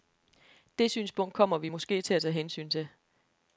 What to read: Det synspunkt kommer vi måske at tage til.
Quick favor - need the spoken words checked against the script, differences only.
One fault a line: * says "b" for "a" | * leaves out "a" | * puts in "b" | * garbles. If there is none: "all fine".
* puts in "til"
* puts in "hensyn"